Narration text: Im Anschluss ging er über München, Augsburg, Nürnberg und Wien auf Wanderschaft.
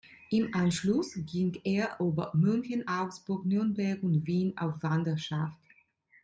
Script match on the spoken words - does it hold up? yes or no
yes